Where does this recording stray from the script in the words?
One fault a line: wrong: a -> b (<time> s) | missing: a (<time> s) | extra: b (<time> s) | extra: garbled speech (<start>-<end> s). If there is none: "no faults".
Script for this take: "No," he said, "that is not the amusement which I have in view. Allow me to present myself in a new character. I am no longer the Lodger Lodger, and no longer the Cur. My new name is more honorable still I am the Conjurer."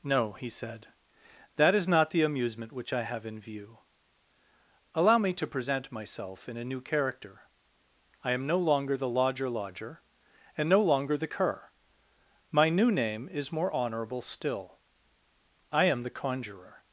no faults